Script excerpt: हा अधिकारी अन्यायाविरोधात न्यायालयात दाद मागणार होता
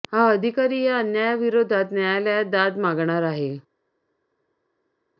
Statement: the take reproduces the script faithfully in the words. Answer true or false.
false